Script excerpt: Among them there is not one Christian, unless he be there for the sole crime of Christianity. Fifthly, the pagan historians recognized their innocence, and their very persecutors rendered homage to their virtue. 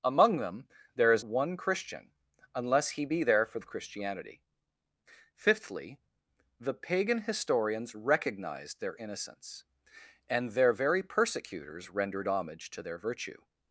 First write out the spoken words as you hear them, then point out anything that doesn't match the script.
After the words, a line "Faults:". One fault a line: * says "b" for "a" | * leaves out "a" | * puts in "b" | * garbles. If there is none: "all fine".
Among them there is one Christian, unless he be there for of Christianity. Fifthly, the pagan historians recognized their innocence, and their very persecutors rendered homage to their virtue.
Faults:
* leaves out "not"
* leaves out "the sole crime"